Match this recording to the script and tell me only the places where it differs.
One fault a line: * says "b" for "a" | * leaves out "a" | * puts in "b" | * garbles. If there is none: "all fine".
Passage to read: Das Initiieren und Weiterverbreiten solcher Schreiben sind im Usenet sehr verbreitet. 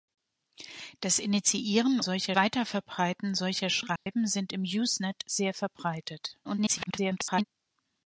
* says "solcher" for "und"
* garbles